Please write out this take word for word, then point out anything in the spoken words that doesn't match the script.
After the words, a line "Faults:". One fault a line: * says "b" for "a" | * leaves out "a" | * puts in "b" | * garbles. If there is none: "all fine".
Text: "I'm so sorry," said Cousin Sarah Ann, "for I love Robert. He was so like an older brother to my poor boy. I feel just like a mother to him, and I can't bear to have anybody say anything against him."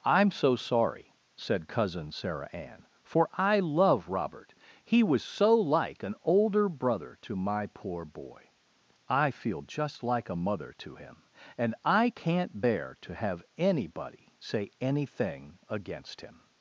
"I'm so sorry," said Cousin Sarah Ann, "for I love Robert. He was so like an older brother to my poor boy. I feel just like a mother to him, and I can't bear to have anybody say anything against him."
Faults:
all fine